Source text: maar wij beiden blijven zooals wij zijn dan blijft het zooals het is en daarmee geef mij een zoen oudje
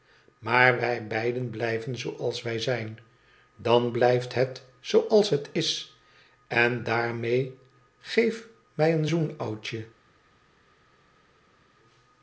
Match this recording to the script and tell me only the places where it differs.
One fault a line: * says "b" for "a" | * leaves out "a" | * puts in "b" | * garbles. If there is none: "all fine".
all fine